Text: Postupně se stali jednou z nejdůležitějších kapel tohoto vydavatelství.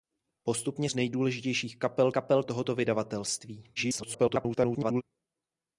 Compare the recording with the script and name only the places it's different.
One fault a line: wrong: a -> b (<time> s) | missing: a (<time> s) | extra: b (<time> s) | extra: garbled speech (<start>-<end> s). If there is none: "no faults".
missing: se stali jednou (0.9 s)
extra: kapel (2.1 s)
extra: garbled speech (3.8-5.0 s)